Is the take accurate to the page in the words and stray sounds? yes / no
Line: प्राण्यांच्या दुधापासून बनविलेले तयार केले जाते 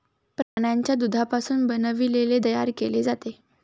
no